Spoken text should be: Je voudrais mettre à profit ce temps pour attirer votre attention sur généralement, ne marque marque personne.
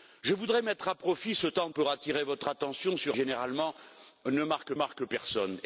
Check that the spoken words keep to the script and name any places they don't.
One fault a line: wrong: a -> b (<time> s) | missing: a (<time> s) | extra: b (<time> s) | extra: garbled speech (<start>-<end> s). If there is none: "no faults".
no faults